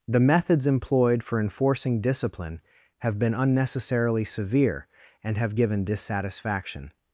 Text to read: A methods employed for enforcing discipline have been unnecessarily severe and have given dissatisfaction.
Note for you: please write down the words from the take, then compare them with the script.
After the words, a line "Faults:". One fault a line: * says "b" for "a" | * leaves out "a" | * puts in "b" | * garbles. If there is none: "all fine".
The methods employed for enforcing discipline have been unnecessarily severe and have given dissatisfaction.
Faults:
* says "The" for "A"